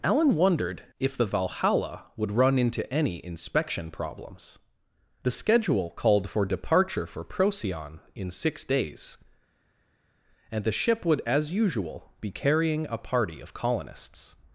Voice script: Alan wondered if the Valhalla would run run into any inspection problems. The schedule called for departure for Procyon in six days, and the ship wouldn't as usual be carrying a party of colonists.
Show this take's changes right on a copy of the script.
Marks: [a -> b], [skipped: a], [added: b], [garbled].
Alan wondered if the Valhalla would run [skipped: run] into any inspection problems. The schedule called for departure for Procyon in six days, and the ship [wouldn't -> would] as usual be carrying a party of colonists.